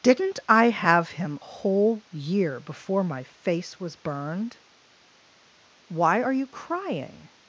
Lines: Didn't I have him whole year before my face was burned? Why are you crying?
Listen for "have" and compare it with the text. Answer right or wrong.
right